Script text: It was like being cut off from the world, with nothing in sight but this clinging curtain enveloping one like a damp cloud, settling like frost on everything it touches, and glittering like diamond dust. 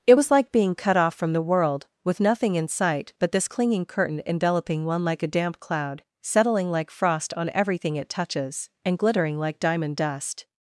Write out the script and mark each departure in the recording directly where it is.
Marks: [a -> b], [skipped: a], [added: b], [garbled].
It was like being cut off from the world, with nothing in sight but this clinging curtain enveloping one like a damp cloud, settling like frost on everything it touches, and glittering like diamond dust.